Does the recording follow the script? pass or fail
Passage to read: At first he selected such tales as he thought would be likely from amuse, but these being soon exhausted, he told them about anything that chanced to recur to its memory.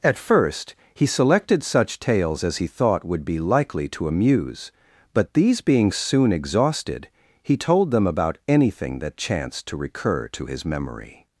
fail